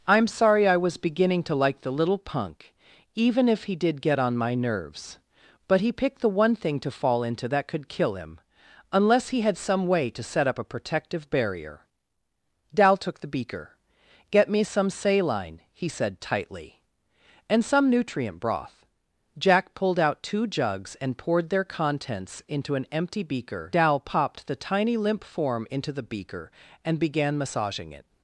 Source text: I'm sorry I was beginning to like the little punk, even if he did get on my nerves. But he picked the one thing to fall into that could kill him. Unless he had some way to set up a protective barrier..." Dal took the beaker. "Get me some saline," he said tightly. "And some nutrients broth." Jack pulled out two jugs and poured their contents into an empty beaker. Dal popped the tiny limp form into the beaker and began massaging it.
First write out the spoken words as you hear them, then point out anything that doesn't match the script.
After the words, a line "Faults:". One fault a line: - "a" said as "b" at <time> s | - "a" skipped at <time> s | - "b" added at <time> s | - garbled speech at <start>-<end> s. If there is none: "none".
I'm sorry I was beginning to like the little punk, even if he did get on my nerves. But he picked the one thing to fall into that could kill him. Unless he had some way to set up a protective barrier..." Dal took the beaker. "Get me some saline," he said tightly. "And some nutrient broth." Jack pulled out two jugs and poured their contents into an empty beaker. Dal popped the tiny limp form into the beaker and began massaging it.
Faults:
- "nutrients" said as "nutrient" at 17.9 s